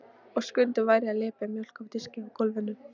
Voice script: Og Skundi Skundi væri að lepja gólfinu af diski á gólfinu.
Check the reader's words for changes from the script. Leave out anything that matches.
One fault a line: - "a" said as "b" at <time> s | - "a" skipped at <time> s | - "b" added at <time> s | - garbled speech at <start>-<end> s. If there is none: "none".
- "Skundi" skipped at 0.9 s
- "gólfinu" said as "mjólk" at 1.6 s